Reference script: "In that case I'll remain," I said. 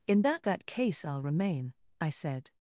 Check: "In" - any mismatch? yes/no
no